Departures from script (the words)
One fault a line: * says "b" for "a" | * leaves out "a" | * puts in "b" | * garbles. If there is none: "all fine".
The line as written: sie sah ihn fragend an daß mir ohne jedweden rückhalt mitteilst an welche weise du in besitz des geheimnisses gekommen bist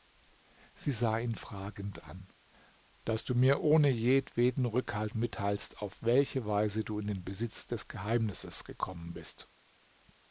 * puts in "du"
* says "auf" for "an"
* puts in "den"